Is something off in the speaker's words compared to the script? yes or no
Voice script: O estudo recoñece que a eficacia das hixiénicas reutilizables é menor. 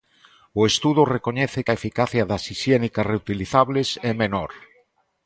no